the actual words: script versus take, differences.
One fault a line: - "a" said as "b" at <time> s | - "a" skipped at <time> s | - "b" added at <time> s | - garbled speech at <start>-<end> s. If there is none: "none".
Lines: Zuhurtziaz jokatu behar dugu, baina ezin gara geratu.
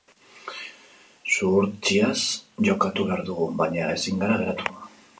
none